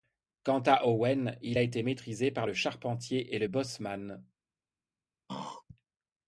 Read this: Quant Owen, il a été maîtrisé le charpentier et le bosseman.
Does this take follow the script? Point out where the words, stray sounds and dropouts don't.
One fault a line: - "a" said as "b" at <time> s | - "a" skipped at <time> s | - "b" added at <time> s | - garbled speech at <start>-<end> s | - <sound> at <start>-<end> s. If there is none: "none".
- "à" added at 0.6 s
- "par" added at 2.3 s
- throat clearing at 5.3-5.6 s